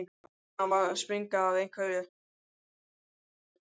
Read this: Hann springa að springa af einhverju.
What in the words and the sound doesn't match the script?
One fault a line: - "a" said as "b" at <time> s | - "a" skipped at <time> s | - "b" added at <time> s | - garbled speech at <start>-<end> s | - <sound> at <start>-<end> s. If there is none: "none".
- "springa" said as "var" at 0.7 s